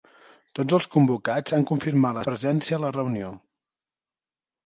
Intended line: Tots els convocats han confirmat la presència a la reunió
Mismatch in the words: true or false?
false